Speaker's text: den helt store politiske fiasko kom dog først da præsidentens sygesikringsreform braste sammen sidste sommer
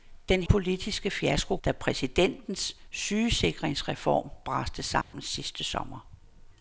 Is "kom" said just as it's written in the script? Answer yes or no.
no